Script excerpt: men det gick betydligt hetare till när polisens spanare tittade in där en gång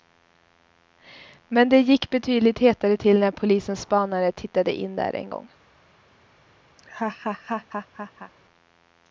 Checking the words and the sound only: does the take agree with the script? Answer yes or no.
no